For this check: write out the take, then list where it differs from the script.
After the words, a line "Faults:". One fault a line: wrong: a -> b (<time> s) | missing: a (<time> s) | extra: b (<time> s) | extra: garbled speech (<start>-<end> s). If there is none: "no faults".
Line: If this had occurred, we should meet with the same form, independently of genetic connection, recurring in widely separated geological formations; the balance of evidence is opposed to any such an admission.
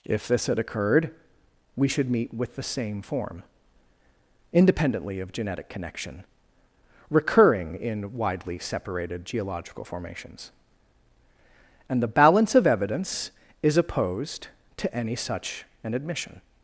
If this had occurred, we should meet with the same form, independently of genetic connection, recurring in widely separated geological formations; and the balance of evidence is opposed to any such an admission.
Faults:
extra: and (11.9 s)